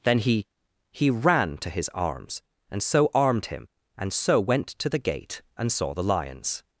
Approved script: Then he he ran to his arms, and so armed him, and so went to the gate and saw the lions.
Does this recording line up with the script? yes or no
yes